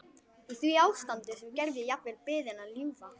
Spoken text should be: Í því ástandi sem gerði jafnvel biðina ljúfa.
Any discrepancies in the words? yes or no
no